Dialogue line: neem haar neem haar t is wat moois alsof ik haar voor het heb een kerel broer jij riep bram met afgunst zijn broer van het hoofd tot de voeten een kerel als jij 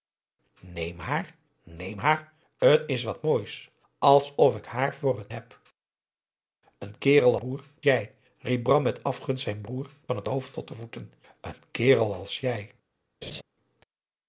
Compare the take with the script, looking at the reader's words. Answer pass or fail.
pass